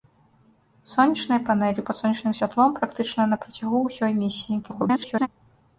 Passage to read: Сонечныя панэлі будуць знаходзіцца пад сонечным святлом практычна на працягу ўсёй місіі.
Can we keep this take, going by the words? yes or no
no